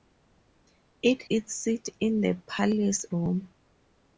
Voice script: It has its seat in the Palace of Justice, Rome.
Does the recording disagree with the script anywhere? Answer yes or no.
yes